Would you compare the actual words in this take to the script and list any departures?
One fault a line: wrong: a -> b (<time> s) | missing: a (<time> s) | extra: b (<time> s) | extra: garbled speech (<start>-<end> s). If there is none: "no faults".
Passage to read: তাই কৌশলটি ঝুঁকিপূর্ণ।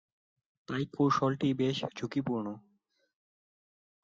extra: বেশ (1.5 s)